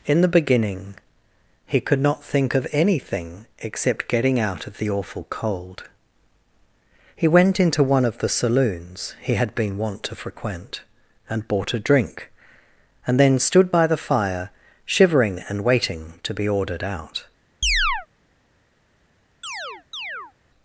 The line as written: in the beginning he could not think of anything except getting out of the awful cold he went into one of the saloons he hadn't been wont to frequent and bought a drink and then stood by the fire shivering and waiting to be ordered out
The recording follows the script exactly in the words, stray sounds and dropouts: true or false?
false